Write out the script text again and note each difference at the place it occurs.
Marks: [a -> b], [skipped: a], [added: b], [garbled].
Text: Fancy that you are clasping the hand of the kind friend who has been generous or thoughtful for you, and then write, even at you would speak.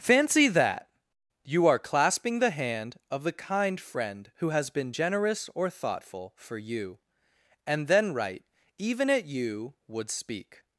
Fancy that you are clasping the hand of the kind friend who has been generous or thoughtful for you, and then write, even at you would speak.